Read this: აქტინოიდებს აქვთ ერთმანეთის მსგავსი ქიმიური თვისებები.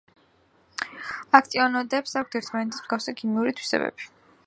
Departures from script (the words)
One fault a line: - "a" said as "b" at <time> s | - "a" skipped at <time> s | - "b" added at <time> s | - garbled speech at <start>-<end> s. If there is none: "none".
none